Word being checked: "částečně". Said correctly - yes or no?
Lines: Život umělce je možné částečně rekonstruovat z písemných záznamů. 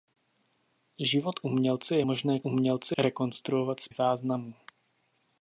no